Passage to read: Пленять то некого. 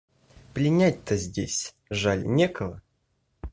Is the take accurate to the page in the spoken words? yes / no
no